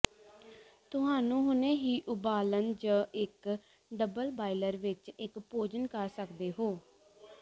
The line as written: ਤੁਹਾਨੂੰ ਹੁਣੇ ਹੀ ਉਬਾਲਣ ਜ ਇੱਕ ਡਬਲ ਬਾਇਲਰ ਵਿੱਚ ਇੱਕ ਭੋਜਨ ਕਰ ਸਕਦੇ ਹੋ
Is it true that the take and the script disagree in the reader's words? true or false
false